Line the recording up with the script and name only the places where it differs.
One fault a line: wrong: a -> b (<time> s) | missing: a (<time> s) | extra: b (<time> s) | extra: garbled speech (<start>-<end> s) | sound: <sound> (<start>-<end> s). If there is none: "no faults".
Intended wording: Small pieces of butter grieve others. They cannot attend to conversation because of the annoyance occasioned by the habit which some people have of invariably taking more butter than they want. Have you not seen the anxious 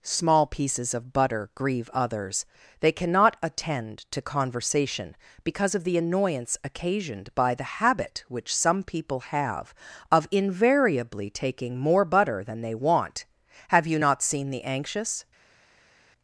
no faults